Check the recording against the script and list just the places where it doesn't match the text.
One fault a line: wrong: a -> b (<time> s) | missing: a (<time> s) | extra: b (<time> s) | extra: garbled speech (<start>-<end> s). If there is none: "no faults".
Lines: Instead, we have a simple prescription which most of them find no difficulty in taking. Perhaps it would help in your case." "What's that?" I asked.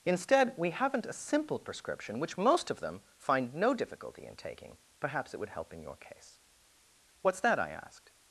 wrong: have -> haven't (0.7 s)